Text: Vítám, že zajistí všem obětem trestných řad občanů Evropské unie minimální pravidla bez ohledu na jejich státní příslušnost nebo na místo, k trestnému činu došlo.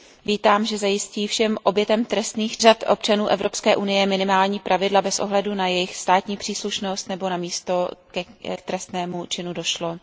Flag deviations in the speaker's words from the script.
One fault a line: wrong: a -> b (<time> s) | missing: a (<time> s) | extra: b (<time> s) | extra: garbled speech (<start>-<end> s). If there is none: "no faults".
no faults